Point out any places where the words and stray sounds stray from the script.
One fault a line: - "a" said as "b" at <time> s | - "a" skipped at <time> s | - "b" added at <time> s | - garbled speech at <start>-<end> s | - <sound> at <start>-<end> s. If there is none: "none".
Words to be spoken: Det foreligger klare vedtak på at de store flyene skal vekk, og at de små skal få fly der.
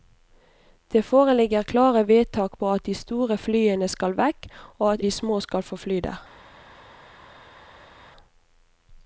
none